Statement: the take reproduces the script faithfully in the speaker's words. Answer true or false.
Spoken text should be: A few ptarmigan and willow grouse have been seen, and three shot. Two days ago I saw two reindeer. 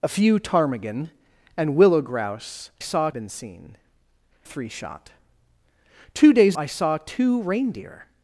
false